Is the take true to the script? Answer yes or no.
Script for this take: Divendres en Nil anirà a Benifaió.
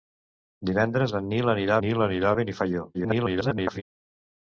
no